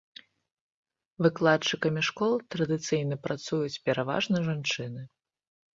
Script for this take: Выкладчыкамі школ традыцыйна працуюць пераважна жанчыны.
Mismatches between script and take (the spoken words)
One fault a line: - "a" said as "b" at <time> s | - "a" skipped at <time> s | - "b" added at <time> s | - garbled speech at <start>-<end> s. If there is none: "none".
none